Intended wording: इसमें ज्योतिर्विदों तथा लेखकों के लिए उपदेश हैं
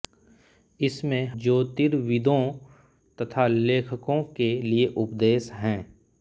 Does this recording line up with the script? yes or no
yes